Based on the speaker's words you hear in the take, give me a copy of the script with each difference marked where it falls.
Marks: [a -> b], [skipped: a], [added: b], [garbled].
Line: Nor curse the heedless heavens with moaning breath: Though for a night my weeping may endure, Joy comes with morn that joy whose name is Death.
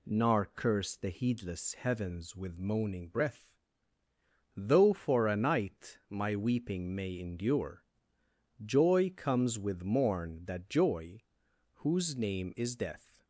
Nor curse the heedless heavens with moaning breath: Though for a night my weeping may endure, Joy comes with morn that joy whose name is Death.